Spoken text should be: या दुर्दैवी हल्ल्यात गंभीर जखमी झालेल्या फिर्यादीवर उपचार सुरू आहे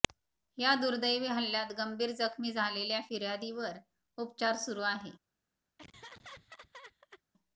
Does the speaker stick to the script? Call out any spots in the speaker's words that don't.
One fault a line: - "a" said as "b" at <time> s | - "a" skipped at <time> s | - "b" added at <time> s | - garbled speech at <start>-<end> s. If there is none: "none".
none